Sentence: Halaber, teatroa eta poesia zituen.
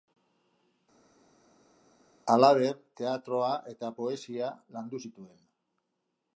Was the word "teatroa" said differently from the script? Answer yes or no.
no